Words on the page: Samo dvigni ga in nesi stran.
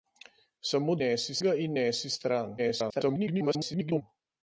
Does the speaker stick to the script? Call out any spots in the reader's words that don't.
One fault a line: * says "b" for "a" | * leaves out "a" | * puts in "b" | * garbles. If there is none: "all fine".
* says "nesi" for "dvigni"
* garbles